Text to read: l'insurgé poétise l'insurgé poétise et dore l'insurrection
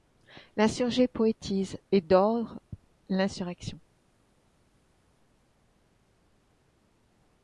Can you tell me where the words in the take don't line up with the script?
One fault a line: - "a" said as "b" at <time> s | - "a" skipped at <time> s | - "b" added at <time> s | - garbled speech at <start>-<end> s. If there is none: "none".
- "l'insurgé poétise" skipped at 1.8 s